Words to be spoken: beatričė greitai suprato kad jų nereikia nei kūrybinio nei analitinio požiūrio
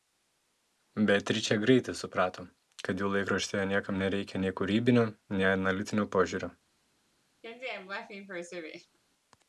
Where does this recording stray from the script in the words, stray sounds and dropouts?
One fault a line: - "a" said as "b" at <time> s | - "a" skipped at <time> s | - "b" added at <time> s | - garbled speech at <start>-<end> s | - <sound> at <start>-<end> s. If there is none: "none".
- "laikraštyje niekam" added at 3.2 s
- laugh at 7.4-9.0 s